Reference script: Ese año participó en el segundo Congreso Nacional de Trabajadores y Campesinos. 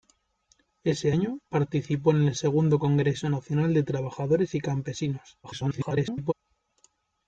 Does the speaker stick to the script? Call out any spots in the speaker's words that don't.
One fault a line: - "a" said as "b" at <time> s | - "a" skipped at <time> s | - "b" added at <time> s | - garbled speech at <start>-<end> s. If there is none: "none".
- garbled speech at 5.4-6.3 s